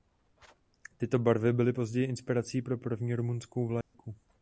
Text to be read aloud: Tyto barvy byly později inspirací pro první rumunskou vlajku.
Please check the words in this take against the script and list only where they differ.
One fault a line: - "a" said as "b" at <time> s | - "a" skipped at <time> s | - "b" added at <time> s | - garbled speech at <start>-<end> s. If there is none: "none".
none